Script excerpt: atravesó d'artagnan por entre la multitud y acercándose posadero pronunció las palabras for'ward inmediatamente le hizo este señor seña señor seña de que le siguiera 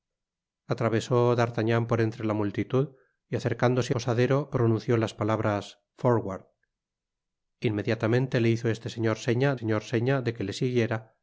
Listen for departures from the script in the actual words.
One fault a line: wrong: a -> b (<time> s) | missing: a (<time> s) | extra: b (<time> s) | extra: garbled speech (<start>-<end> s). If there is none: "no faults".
no faults